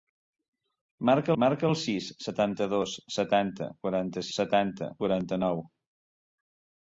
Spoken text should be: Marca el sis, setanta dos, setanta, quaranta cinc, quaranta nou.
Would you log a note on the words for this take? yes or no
yes